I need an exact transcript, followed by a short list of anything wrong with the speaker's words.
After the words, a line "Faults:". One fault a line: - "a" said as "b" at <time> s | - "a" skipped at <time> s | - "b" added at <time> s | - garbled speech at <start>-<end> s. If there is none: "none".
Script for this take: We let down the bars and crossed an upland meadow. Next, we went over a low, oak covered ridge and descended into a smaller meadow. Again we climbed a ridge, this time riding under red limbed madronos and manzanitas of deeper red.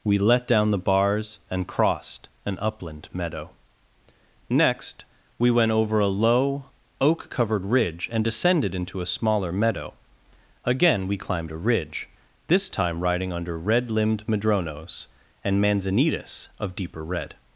We let down the bars and crossed an upland meadow. Next, we went over a low, oak covered ridge and descended into a smaller meadow. Again we climbed a ridge, this time riding under red limbed madronos and manzanitas of deeper red.
Faults:
none